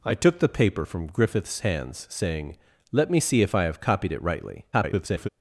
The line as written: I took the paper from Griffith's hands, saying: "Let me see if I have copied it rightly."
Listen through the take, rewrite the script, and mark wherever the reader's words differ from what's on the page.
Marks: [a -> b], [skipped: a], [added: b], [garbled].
I took the paper from Griffith's hands, saying: "Let me see if I have copied it rightly." [garbled]